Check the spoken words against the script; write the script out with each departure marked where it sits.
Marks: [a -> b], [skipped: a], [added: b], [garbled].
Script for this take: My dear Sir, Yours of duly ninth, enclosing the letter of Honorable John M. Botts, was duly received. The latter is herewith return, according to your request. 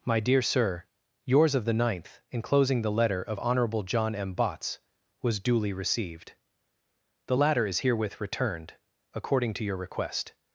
My dear Sir, Yours of [duly -> the] ninth, enclosing the letter of Honorable John M. Botts, was duly received. The latter is herewith [return, -> returned] according to your request.